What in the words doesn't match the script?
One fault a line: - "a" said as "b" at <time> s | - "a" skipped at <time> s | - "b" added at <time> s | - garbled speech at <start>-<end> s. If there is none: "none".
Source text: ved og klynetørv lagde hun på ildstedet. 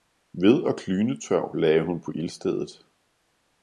none